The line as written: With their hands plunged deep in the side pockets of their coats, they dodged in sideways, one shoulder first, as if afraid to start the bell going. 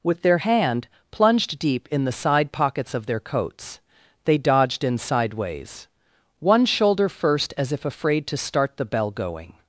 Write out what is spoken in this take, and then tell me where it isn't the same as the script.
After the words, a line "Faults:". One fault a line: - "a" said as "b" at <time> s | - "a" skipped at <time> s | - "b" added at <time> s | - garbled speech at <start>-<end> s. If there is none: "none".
With their hand plunged deep in the side pockets of their coats, they dodged in sideways, one shoulder first, as if afraid to start the bell going.
Faults:
- "hands" said as "hand" at 0.4 s